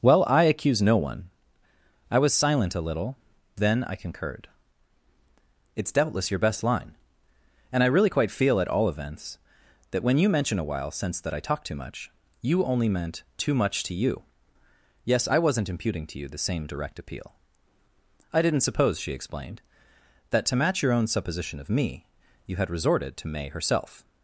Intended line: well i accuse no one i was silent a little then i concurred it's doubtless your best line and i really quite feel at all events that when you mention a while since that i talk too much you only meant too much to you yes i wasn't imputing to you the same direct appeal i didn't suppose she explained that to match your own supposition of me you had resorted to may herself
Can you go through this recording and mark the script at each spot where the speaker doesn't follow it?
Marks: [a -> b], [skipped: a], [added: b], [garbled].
well i accuse no one i was silent a little then i concurred it's doubtless your best line and i really quite feel at all events that when you mention a while since that i talk too much you only meant too much to you yes i wasn't imputing to you the same direct appeal i didn't suppose she explained that to match your own supposition of me you had resorted to may herself